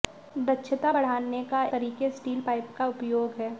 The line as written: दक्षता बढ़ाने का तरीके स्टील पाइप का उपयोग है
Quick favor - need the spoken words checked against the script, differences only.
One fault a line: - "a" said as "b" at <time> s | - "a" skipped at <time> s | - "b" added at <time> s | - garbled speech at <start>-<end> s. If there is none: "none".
none